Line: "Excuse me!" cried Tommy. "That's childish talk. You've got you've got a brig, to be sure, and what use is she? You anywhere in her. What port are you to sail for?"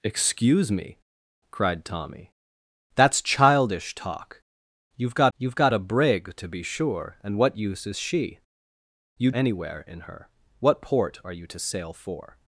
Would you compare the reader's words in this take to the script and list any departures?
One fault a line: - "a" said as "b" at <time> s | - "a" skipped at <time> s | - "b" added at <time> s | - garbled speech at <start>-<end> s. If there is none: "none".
none